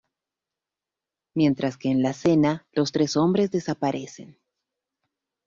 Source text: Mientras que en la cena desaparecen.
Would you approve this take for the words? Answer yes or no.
no